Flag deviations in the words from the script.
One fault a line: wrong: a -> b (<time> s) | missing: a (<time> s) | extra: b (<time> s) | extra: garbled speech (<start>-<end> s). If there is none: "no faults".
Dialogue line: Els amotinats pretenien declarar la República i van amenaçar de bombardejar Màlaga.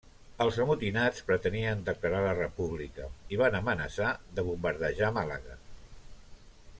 no faults